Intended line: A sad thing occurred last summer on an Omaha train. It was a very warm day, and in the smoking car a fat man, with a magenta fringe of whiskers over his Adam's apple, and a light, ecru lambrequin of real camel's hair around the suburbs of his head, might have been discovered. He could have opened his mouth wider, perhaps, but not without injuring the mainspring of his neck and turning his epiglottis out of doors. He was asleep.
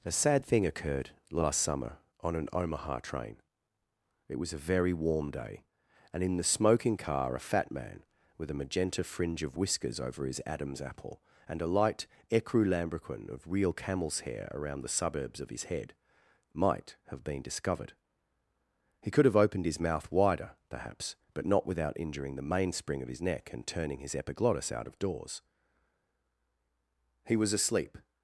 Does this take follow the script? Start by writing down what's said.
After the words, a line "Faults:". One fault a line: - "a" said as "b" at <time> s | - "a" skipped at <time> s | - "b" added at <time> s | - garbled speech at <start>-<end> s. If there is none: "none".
A sad thing occurred last summer on an Omaha train. It was a very warm day, and in the smoking car a fat man, with a magenta fringe of whiskers over his Adam's apple, and a light, ecru lambrequin of real camel's hair around the suburbs of his head, might have been discovered. He could have opened his mouth wider, perhaps, but not without injuring the mainspring of his neck and turning his epiglottis out of doors. He was asleep.
Faults:
none